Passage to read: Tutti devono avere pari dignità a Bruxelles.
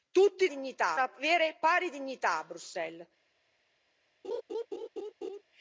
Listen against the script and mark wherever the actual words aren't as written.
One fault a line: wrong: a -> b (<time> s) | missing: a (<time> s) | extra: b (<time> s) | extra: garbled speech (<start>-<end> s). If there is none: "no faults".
wrong: devono -> dignità (0.5 s)